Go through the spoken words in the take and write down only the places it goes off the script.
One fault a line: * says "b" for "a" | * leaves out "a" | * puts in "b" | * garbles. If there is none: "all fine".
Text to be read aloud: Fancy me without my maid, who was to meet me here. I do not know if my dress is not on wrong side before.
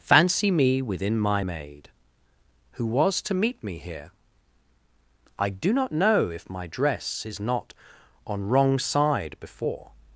* says "within" for "without"